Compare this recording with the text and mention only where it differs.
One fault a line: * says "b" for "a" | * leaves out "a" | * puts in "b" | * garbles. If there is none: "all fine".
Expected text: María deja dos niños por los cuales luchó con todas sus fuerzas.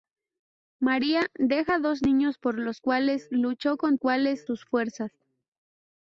* says "cuales" for "todas"